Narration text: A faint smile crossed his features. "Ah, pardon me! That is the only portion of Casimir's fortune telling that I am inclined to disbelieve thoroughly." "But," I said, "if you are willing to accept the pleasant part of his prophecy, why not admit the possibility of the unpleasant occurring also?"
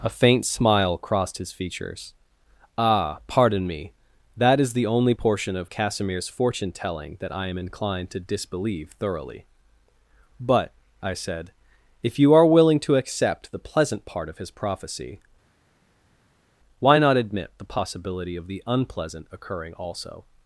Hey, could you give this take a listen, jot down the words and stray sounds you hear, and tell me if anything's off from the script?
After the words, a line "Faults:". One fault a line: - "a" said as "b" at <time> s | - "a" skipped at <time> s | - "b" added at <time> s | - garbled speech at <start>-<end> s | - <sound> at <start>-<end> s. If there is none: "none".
A faint smile crossed his features. "Ah, pardon me! That is the only portion of Casimir's fortune telling that I am inclined to disbelieve thoroughly." "But," I said, "if you are willing to accept the pleasant part of his prophecy, why not admit the possibility of the unpleasant occurring also?"
Faults:
none